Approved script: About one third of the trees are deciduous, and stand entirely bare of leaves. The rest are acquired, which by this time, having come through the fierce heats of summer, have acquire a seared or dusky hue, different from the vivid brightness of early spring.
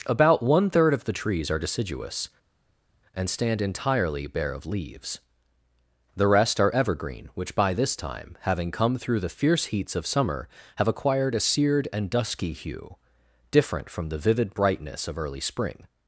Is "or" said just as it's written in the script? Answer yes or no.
no